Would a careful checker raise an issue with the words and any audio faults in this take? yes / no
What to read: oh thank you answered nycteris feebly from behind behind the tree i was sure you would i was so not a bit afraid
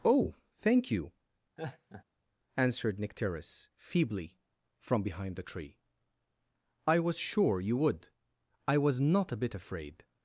yes